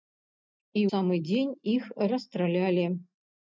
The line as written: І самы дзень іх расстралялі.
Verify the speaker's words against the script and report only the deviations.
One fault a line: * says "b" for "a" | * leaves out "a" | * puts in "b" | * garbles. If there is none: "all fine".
all fine